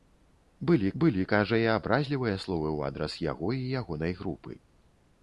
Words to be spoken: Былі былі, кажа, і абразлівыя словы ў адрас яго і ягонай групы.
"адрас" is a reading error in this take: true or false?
false